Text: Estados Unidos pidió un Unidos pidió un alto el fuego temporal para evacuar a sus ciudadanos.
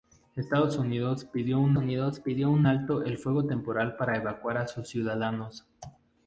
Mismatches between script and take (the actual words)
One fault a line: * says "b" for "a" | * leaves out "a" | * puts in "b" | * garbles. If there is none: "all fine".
all fine